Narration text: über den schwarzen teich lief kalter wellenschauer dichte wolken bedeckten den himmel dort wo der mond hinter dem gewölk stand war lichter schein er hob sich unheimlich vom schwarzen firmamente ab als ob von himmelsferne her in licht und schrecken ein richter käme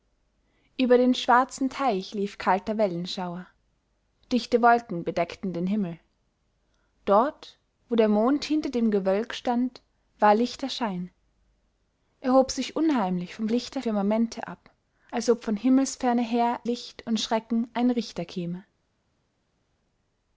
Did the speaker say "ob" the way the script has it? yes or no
yes